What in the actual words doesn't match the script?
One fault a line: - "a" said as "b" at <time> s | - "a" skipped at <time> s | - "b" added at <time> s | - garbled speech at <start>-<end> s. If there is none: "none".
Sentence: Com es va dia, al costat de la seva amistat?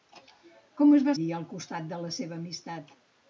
none